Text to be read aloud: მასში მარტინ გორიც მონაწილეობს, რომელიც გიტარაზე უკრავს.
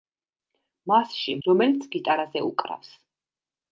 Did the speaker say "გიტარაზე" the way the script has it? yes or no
yes